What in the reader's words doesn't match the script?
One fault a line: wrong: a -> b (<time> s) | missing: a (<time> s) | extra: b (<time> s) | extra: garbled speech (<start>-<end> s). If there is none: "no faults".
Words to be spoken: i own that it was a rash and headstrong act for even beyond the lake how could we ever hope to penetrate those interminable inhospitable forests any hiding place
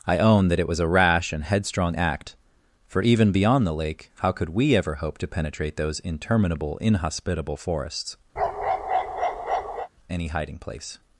no faults